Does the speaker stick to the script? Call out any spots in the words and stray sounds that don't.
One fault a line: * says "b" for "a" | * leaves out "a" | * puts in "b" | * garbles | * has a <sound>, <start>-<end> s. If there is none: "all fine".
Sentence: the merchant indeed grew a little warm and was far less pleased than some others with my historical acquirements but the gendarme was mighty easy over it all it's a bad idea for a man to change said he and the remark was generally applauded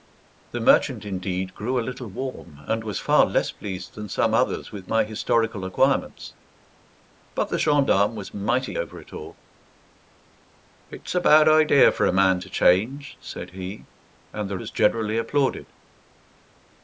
* leaves out "easy"
* leaves out "remark"